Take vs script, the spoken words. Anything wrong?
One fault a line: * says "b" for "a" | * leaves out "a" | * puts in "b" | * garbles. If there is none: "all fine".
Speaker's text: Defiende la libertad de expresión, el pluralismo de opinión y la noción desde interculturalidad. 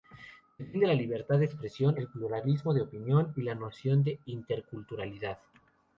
* says "de" for "desde"